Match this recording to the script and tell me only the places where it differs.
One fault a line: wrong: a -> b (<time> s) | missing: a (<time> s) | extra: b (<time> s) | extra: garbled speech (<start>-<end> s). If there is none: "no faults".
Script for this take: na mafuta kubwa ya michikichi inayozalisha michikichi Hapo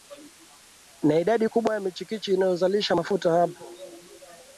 wrong: mafuta -> idadi (1.2 s)
wrong: michikichi -> mafuta (2.9 s)